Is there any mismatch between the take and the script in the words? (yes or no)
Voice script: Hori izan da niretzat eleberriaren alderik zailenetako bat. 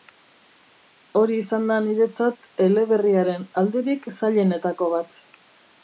no